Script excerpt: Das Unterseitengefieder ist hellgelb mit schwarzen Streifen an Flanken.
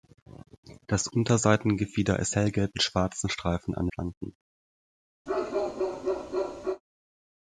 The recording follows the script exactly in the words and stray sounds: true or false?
false